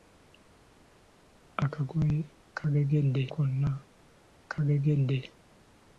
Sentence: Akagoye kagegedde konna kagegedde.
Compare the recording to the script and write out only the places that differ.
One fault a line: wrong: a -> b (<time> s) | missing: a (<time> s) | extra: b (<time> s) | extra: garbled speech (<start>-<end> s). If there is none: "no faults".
no faults